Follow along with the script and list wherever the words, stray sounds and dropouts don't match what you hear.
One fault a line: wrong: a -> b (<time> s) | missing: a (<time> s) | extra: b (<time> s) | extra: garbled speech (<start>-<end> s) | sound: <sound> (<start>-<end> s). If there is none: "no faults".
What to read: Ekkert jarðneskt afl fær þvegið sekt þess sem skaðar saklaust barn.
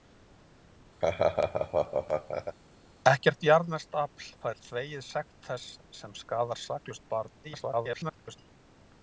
sound: laugh (1.0-2.6 s)
extra: garbled speech (7.4-8.4 s)